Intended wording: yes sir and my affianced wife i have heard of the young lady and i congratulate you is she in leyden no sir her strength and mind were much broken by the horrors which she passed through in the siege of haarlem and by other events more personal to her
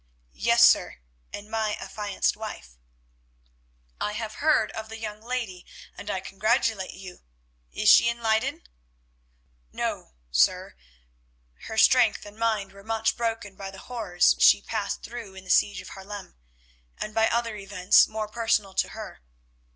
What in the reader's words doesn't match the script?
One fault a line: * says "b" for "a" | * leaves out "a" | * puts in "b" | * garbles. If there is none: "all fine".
* leaves out "which"